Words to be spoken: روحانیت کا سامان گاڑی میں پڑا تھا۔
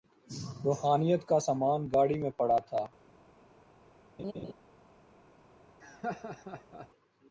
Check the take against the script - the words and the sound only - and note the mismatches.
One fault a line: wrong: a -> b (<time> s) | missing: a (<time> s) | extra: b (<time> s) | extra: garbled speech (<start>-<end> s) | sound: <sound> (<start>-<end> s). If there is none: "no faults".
sound: laugh (4.2-4.5 s)
sound: laugh (5.8-6.9 s)